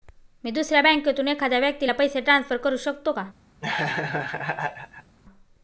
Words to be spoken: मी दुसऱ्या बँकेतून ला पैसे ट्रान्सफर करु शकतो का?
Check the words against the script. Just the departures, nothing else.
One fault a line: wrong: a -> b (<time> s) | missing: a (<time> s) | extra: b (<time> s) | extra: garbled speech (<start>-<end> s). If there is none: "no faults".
extra: एखाद्या व्यक्ती (1.3 s)